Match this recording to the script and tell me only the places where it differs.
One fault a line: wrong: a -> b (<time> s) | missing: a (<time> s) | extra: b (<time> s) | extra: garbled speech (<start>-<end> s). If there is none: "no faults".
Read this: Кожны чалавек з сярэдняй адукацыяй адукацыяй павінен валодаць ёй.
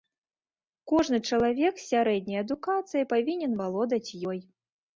missing: адукацыяй (3.0 s)